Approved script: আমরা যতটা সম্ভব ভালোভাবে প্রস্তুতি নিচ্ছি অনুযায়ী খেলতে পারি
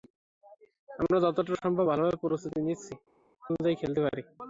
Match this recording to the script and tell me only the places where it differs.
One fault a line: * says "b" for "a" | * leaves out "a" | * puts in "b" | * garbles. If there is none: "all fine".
all fine